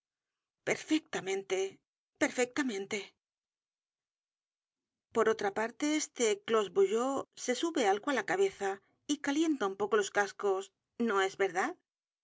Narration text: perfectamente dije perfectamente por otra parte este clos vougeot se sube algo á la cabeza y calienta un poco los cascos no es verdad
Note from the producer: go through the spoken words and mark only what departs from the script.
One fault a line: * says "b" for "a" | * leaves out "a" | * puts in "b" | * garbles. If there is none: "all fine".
* leaves out "dije"